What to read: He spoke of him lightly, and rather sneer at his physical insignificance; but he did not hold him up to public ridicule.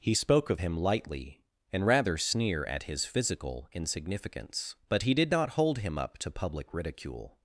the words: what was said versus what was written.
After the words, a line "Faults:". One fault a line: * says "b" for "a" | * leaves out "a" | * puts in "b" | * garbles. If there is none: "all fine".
He spoke of him lightly, and rather sneer at his physical insignificance; but he did not hold him up to public ridicule.
Faults:
all fine